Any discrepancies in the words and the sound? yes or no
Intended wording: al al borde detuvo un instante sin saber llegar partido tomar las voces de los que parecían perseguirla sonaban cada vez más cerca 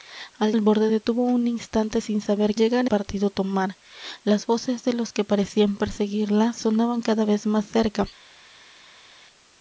no